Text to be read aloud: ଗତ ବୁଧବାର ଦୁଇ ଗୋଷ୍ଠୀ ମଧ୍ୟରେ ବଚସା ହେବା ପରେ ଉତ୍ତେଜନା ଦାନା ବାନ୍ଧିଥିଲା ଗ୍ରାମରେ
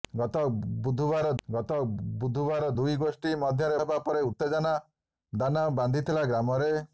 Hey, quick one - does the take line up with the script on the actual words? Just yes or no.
no